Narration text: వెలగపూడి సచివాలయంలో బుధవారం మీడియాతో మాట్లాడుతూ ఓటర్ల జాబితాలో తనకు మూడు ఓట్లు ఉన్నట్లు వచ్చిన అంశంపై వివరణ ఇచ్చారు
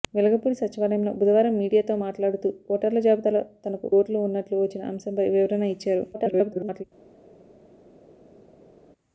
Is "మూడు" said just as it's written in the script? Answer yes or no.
no